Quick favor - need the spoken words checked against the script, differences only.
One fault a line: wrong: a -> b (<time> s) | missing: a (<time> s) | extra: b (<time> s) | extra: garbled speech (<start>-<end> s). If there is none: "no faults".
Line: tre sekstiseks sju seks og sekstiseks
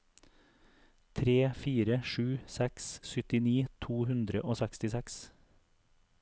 wrong: sekstiseks -> fire (1.6 s)
extra: syttini to hundre (3.1 s)